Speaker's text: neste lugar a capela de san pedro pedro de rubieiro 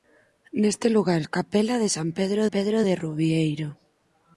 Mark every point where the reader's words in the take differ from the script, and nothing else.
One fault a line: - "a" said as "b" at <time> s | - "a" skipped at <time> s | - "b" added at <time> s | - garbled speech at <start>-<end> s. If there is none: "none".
none